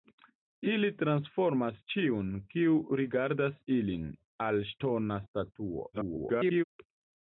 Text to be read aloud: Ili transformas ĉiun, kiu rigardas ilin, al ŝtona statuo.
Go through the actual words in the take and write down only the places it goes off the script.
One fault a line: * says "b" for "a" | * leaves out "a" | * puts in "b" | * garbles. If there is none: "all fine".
* garbles